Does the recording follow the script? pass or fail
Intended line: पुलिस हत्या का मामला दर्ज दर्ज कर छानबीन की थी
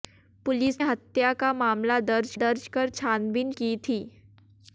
pass